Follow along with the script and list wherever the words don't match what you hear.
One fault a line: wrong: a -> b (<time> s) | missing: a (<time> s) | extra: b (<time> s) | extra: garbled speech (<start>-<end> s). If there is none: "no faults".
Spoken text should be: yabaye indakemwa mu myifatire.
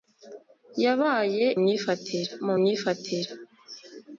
wrong: indakemwa -> myifatire (1.6 s)